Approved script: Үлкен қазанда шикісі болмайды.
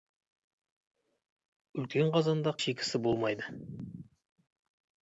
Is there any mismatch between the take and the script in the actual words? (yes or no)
no